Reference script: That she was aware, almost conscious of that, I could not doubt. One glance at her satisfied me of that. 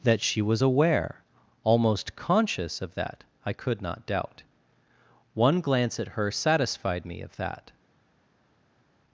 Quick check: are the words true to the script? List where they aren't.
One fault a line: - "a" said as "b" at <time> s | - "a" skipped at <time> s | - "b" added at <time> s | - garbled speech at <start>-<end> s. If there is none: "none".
none